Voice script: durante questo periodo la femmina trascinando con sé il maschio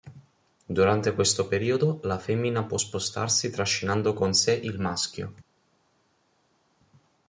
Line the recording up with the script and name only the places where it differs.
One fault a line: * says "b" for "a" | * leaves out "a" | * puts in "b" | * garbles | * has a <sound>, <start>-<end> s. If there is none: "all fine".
* puts in "può spostarsi"